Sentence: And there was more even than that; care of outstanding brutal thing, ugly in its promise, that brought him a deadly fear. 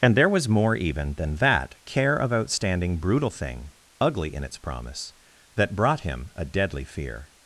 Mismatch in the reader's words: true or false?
false